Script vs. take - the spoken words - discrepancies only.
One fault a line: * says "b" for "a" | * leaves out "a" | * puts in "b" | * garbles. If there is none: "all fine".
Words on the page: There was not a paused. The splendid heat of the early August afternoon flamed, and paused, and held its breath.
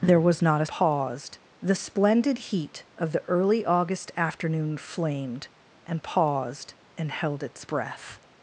all fine